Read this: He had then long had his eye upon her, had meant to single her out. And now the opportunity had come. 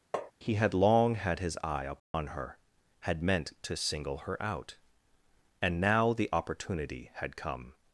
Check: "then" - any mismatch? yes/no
yes